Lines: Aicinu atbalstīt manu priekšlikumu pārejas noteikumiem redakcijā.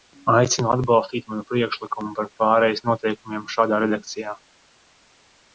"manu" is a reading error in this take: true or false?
false